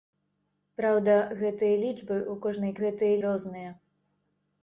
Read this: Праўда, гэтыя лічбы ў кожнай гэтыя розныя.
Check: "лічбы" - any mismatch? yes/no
no